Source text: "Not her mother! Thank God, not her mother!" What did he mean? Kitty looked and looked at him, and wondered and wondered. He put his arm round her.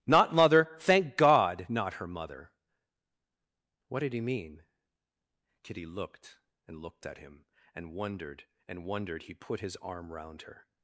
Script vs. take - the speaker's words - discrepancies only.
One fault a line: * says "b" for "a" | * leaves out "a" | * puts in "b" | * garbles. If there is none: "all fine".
* leaves out "her"